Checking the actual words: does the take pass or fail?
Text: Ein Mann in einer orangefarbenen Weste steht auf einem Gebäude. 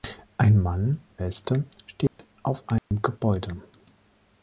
fail